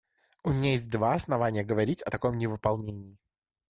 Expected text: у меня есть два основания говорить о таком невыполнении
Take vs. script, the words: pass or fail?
pass